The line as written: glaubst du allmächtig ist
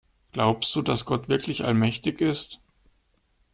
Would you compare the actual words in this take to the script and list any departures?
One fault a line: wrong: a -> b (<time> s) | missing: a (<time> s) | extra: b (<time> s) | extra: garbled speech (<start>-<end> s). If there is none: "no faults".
extra: dass gott wirklich (0.8 s)